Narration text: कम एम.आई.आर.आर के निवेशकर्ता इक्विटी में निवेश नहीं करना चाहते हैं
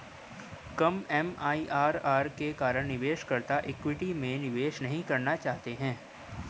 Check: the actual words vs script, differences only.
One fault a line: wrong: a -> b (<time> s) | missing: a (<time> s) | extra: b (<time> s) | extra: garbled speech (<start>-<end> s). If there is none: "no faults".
extra: कारण (2.5 s)